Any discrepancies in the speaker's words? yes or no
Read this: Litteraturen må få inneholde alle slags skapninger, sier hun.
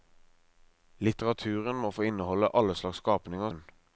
yes